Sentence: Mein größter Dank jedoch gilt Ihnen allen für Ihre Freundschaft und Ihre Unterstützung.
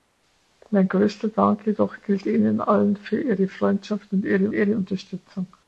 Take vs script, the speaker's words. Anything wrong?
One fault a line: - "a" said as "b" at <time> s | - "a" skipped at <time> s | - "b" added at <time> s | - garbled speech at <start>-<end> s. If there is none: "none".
- "Ihre" added at 4.5 s